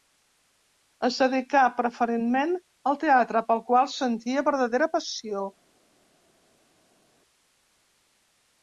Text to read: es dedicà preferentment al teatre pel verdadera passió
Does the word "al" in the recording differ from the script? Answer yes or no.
no